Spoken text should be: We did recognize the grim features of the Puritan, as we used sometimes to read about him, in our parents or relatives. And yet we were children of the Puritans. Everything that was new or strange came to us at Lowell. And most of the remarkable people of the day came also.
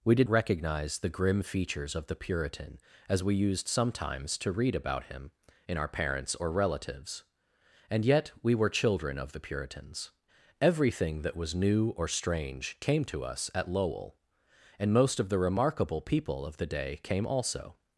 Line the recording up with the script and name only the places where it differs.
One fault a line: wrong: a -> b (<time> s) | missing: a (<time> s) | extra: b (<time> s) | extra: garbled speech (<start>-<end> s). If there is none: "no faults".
no faults